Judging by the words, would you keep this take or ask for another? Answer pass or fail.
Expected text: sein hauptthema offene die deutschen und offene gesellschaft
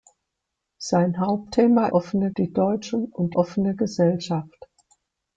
pass